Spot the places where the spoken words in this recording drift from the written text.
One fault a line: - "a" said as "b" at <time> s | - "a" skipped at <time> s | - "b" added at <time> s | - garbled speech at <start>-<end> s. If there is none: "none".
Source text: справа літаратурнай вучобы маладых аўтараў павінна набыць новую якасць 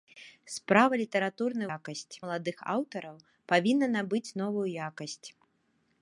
- "вучобы" said as "якасць" at 1.8 s